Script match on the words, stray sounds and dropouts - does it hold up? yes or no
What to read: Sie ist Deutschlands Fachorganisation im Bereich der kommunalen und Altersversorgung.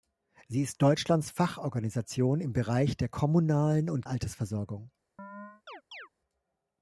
no